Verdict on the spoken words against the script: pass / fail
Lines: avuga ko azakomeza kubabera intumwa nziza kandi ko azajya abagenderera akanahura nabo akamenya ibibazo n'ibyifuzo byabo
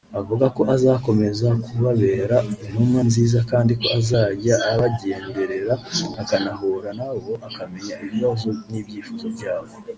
pass